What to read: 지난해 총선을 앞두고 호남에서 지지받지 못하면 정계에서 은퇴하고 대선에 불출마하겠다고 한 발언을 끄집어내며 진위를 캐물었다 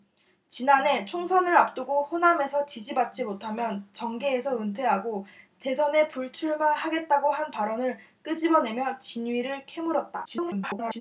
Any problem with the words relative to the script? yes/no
yes